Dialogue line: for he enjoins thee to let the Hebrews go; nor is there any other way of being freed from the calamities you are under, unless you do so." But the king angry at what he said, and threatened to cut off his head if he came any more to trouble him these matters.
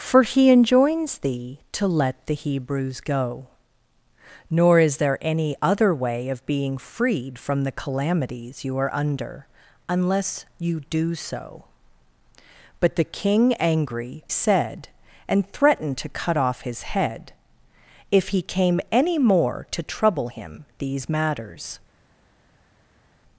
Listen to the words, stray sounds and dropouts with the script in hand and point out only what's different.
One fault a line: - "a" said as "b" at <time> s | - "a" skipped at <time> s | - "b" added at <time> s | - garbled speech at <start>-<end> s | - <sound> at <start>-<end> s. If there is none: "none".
- "at what he" skipped at 14.2 s